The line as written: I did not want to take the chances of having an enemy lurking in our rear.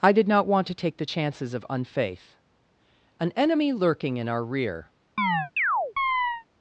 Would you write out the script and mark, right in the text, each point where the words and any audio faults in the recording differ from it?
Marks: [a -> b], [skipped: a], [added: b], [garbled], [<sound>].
I did not want to take the chances of [having -> unfaith] an enemy lurking in our rear. [chirp]